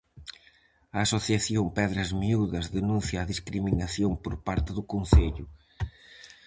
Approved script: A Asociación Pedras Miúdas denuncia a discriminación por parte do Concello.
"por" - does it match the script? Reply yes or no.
yes